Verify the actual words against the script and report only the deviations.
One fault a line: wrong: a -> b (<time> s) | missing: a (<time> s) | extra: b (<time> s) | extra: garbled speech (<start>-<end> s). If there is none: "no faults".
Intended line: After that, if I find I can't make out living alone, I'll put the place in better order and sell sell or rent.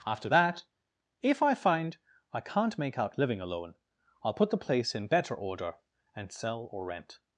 missing: sell (6.7 s)